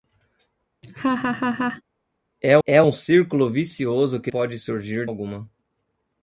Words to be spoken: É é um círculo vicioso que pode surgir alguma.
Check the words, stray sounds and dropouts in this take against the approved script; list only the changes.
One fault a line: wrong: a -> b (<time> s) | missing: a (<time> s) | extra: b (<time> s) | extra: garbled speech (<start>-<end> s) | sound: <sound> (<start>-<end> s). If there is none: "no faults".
sound: laugh (0.8-1.8 s)